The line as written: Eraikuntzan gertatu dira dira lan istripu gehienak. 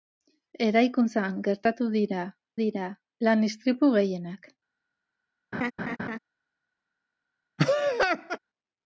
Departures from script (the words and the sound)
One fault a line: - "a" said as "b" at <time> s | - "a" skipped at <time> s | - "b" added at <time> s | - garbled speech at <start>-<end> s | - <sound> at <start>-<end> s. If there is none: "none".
- laugh at 5.5-6.2 s
- laugh at 7.6-8.4 s